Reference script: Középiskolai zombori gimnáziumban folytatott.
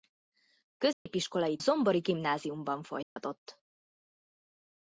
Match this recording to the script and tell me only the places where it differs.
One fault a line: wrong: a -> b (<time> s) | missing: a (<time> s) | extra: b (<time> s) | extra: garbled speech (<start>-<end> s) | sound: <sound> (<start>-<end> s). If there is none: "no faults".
sound: dropout (0.9-1.1 s)
sound: dropout (3.0-3.2 s)